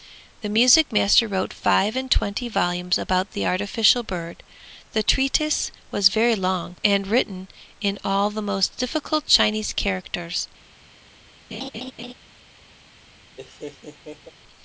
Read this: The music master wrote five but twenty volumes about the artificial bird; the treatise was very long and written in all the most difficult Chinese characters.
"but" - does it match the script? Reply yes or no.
no